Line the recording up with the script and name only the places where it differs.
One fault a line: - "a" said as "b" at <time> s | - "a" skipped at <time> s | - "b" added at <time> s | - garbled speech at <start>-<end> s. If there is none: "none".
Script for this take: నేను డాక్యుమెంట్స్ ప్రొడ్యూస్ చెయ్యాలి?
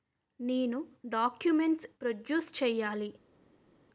none